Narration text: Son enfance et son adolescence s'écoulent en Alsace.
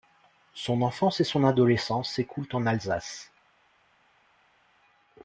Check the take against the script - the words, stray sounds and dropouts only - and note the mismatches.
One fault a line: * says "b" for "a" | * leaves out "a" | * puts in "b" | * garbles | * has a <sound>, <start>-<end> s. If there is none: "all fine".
all fine